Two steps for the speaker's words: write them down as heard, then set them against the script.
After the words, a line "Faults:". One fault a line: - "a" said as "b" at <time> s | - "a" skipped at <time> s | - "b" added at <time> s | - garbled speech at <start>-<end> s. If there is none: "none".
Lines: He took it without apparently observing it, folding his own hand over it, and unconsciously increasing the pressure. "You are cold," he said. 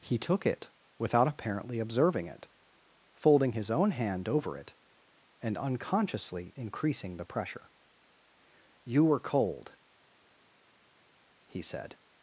He took it without apparently observing it, folding his own hand over it, and unconsciously increasing the pressure. "You were cold," he said.
Faults:
- "are" said as "were" at 9.0 s